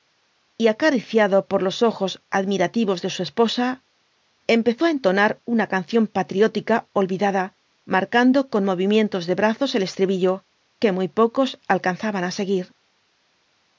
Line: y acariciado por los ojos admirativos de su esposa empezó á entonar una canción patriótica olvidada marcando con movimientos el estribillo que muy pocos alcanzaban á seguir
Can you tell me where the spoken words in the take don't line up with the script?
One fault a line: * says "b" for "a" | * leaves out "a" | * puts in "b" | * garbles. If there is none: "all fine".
* puts in "de brazos"